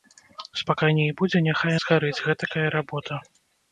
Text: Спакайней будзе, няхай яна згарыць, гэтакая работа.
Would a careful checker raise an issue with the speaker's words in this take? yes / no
yes